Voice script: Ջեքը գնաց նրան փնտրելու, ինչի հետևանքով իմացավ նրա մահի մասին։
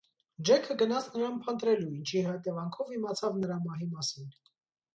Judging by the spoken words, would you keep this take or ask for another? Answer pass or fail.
pass